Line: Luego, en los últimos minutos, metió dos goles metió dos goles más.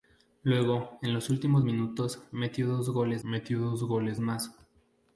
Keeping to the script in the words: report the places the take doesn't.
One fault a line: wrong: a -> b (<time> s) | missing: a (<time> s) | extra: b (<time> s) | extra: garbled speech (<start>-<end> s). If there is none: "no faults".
no faults